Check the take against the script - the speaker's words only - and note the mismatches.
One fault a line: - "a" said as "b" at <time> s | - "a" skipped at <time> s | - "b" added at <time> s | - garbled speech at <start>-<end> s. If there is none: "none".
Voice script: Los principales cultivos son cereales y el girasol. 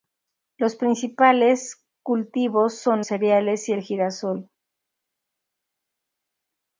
none